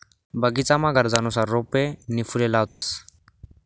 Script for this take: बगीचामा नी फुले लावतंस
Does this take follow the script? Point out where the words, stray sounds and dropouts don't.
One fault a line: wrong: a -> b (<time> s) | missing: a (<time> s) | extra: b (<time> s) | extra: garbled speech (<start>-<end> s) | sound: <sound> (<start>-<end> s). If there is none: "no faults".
extra: गरजनुसार रोपे (0.9 s)
sound: dropout (2.7-2.8 s)